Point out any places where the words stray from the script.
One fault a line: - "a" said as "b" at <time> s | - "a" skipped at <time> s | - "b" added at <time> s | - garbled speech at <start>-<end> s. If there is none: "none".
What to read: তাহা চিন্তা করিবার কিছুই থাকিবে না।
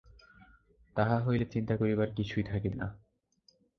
- "হইলে" added at 1.2 s